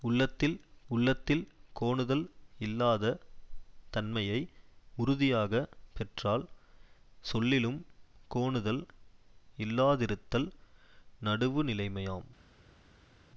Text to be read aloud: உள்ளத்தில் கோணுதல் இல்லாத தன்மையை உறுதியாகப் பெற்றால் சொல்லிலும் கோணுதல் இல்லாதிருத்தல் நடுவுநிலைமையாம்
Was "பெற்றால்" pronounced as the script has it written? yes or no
yes